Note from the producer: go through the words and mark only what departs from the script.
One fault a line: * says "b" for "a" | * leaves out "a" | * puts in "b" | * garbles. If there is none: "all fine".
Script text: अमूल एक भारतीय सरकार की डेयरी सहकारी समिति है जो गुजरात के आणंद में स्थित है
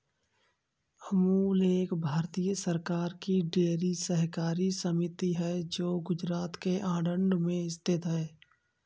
all fine